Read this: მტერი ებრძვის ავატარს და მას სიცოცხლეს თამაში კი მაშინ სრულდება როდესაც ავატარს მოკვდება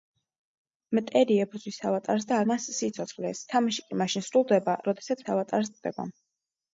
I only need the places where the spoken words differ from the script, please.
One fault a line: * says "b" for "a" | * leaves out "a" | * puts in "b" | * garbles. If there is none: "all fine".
all fine